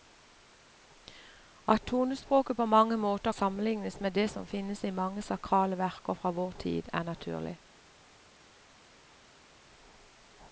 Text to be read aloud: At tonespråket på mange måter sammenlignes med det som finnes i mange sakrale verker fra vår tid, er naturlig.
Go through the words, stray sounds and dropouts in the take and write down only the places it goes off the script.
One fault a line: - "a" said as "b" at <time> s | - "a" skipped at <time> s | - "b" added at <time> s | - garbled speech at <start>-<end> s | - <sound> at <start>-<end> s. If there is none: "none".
none